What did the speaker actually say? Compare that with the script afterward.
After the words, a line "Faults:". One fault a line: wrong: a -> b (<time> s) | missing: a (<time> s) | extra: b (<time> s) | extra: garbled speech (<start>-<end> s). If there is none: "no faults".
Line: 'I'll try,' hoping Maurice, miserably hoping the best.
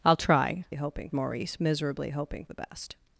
'I'll try,' hoping Maurice, miserably hoping the best.
Faults:
no faults